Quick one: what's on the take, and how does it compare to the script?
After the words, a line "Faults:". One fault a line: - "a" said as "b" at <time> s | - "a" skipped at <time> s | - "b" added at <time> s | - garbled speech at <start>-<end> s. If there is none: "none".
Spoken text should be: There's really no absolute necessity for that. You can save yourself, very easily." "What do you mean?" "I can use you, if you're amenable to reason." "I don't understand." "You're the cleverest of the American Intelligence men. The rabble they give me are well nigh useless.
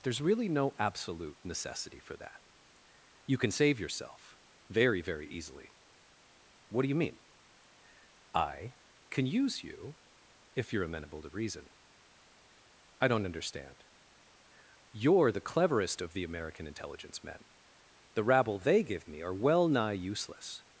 There's really no absolute necessity for that. You can save yourself, very very easily." "What do you mean?" "I can use you, if you're amenable to reason." "I don't understand." "You're the cleverest of the American Intelligence men. The rabble they give me are well nigh useless.
Faults:
- "very" added at 5.0 s